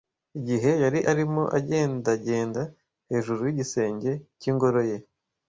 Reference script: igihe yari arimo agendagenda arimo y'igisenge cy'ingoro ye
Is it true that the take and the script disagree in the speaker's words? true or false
true